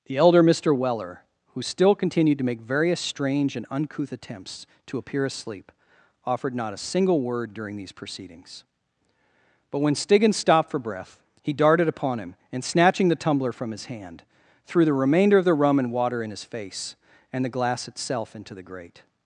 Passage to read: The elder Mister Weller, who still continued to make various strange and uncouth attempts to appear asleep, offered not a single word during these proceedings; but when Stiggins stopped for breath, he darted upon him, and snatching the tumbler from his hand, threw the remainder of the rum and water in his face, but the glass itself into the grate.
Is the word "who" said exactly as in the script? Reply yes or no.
yes